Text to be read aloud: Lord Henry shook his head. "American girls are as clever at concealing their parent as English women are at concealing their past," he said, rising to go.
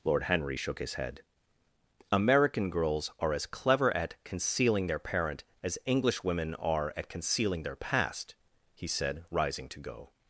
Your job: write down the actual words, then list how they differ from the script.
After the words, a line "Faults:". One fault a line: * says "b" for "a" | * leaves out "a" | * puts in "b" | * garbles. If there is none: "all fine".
Lord Henry shook his head. "American girls are as clever at concealing their parent as English women are at concealing their past," he said, rising to go.
Faults:
all fine